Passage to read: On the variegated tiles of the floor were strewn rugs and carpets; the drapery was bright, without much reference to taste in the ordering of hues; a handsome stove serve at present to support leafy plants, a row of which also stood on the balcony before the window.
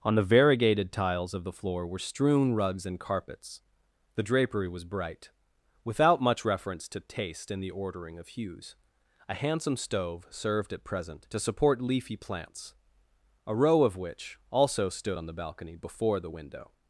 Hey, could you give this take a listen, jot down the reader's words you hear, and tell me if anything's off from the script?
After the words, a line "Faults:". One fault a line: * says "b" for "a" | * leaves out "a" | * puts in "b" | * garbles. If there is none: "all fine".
On the variegated tiles of the floor were strewn rugs and carpets; the drapery was bright, without much reference to taste in the ordering of hues; a handsome stove served at present to support leafy plants, a row of which also stood on the balcony before the window.
Faults:
* says "served" for "serve"